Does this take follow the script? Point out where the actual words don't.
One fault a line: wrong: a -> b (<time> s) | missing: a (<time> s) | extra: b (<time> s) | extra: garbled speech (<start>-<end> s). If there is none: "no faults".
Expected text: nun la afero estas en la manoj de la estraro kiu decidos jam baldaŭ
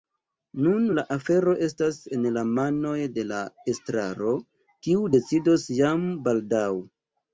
no faults